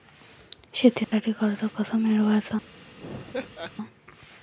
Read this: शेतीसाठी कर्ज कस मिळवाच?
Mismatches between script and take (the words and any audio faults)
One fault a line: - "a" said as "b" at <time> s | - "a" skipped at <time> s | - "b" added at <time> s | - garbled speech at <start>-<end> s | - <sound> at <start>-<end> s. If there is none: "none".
- dropout at 1.0-1.1 s
- laugh at 3.0-3.7 s